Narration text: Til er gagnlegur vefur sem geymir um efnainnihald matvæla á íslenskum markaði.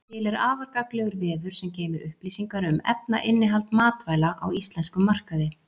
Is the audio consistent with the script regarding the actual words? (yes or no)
no